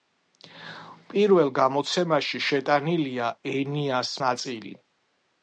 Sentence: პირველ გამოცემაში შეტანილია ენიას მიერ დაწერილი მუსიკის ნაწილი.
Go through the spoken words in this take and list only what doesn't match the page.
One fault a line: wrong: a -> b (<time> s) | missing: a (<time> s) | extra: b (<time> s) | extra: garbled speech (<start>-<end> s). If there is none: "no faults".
missing: მიერ დაწერილი მუსიკის (4.2 s)